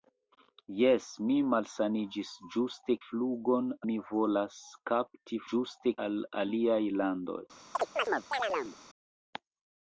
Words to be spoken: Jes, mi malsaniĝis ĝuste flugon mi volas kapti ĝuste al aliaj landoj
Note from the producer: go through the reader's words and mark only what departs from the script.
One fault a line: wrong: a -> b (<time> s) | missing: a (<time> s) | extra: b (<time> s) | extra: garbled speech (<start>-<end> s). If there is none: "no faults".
no faults